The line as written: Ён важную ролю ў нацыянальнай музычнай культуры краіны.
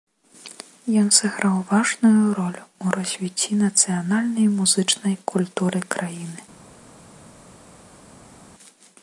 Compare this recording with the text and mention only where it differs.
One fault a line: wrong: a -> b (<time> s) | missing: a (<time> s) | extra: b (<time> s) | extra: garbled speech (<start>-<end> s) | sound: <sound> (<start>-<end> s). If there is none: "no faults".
extra: сыграў (1.2 s)
extra: развіцці (3.0 s)